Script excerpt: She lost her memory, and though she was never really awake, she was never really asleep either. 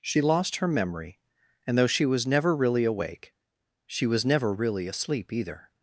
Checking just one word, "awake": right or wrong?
right